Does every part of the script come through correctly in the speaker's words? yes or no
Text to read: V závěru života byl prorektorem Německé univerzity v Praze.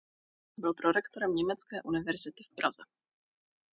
no